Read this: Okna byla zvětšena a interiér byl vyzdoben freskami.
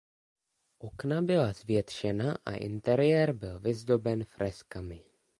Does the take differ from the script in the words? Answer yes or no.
no